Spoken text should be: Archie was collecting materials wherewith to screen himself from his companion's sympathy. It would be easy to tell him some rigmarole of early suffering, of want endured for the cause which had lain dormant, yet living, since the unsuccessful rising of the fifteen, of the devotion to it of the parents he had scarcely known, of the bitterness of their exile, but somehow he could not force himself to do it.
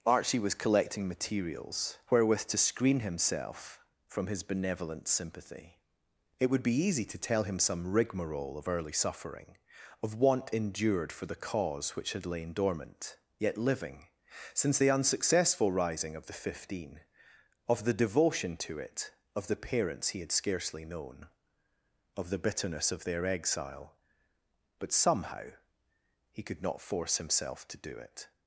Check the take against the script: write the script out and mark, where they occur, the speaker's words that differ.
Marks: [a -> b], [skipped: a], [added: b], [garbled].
Archie was collecting materials wherewith to screen himself from his [companion's -> benevolent] sympathy. It would be easy to tell him some rigmarole of early suffering, of want endured for the cause which had lain dormant, yet living, since the unsuccessful rising of the fifteen, of the devotion to it of the parents he had scarcely known, of the bitterness of their exile, but somehow he could not force himself to do it.